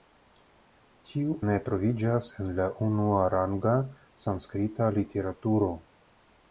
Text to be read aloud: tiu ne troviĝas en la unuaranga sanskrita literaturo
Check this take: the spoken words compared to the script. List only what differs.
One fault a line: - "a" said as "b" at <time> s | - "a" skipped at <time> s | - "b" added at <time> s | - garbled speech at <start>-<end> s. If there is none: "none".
none